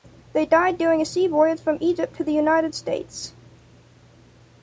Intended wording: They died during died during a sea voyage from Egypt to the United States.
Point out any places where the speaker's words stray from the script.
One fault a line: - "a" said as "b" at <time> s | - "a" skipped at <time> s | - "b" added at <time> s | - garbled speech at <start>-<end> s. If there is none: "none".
- "died during" skipped at 1.0 s